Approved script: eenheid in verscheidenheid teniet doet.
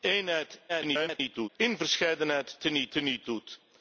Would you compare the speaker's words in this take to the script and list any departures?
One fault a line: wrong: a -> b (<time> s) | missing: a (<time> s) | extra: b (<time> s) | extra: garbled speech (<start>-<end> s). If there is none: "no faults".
extra: garbled speech (0.7-1.5 s)
extra: teniet (2.9 s)